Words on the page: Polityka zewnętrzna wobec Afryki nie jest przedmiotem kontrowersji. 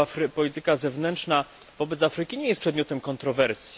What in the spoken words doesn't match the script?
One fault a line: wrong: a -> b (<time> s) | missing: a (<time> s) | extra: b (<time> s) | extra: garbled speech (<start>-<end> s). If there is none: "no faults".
no faults